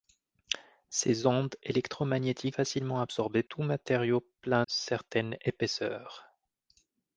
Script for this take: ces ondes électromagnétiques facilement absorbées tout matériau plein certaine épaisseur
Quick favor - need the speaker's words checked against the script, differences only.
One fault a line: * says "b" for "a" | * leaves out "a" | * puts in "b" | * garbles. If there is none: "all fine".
all fine